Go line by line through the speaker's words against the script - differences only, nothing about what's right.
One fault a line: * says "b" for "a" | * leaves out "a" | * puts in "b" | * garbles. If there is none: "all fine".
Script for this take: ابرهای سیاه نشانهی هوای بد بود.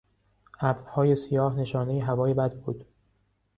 all fine